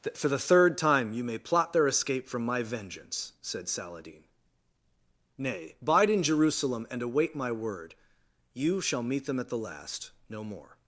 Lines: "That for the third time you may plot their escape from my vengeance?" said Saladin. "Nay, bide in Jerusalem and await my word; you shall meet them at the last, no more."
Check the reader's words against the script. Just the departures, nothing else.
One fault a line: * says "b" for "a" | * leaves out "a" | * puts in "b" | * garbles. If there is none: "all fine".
all fine